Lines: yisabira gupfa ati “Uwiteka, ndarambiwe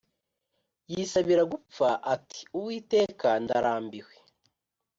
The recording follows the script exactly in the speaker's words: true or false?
true